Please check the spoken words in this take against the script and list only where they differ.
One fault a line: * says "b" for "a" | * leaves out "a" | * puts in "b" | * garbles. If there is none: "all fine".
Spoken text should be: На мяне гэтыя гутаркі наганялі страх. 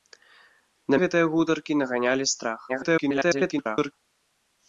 * leaves out "мяне"
* garbles